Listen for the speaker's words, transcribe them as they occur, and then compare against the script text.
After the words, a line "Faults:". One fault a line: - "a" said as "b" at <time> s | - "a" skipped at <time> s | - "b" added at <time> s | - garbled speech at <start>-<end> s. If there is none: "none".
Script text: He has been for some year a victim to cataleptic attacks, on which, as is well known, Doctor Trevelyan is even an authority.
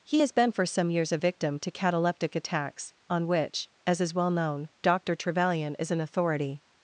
He has been for some years a victim to cataleptic attacks, on which, as is well known, Doctor Trevelyan is an authority.
Faults:
- "year" said as "years" at 0.9 s
- "even" skipped at 5.9 s